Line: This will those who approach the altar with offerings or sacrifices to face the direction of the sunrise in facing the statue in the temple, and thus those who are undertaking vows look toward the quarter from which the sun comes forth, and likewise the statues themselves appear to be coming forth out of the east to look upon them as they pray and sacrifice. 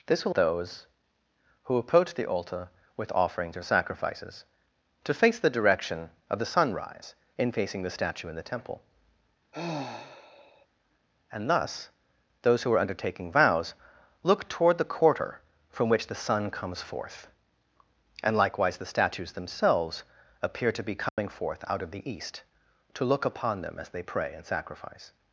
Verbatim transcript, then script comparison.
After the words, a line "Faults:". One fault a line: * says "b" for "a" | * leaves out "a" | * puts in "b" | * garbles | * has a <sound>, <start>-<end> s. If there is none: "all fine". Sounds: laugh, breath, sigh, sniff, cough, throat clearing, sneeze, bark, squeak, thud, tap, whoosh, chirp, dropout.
This will those who approach the altar with offerings or sacrifices to face the direction of the sunrise in facing the statue in the temple, and thus those who are undertaking vows look toward the quarter from which the sun comes forth, and likewise the statues themselves appear to be coming forth out of the east to look upon them as they pray and sacrifice.
Faults:
* has a sigh, 9.5-10.7 s
* has a dropout, 21.1-21.2 s